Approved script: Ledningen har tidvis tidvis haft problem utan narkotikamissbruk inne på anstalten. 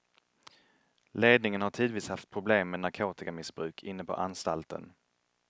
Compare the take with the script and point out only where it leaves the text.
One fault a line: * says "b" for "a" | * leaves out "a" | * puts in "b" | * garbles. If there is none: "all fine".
* leaves out "tidvis"
* says "med" for "utan"